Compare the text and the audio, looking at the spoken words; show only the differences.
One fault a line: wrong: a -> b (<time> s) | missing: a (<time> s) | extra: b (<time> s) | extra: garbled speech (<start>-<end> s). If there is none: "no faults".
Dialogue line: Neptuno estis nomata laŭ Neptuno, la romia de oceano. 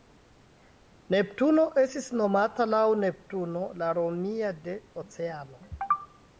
no faults